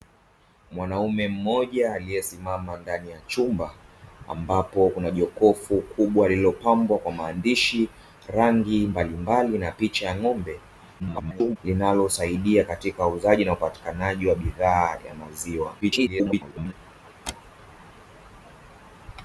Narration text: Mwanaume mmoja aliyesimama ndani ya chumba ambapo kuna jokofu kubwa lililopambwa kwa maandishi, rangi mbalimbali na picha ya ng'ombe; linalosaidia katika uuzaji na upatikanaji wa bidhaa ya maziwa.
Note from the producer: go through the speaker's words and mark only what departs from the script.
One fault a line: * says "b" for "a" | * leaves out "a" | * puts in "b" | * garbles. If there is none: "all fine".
* garbles
* garbles